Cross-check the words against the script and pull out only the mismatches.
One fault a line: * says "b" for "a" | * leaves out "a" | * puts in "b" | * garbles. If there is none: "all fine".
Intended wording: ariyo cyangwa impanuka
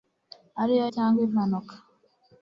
all fine